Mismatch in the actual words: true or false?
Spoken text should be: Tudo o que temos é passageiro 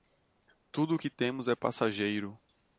false